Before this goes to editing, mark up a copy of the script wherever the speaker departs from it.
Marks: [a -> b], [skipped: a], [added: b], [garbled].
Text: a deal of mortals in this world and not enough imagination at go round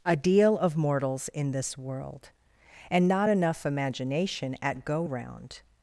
a deal of mortals in this world and not enough imagination at go round